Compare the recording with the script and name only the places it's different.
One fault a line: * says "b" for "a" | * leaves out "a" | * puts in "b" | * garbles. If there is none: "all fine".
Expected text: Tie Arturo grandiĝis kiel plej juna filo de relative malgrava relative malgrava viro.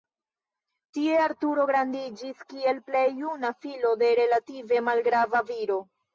* leaves out "relative malgrava"